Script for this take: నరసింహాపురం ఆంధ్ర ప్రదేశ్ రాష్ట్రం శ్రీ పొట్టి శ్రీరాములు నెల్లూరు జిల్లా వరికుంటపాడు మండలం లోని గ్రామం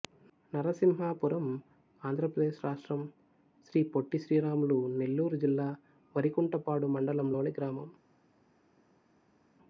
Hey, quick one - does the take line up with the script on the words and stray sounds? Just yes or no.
yes